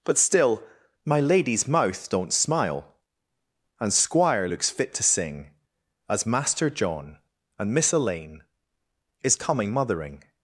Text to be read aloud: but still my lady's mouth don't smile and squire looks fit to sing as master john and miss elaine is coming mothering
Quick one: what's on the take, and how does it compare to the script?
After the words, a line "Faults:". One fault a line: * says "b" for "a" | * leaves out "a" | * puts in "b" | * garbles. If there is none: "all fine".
but still my lady's mouth don't smile and squire looks fit to sing as master john and miss elaine is coming mothering
Faults:
all fine